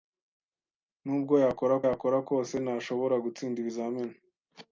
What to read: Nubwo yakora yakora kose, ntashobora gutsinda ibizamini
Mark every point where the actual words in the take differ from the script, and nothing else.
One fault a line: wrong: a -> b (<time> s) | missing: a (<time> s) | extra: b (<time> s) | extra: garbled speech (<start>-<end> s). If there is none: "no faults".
no faults